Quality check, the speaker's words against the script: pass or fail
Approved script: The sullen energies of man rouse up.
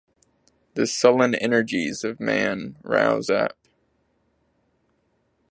pass